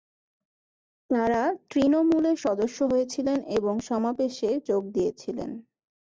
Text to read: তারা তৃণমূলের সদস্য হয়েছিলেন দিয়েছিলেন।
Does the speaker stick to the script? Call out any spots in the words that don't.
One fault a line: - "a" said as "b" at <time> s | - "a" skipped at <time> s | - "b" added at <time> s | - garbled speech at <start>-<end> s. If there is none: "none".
- "এবং সমাবেশে যোগ" added at 3.6 s